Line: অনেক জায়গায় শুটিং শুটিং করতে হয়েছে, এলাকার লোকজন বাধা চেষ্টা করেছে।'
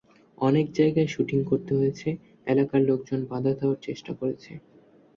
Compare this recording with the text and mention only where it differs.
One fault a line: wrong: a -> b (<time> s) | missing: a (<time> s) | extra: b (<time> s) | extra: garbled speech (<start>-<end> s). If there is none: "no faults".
missing: শুটিং (1.4 s)
extra: দেওয়ার (3.6 s)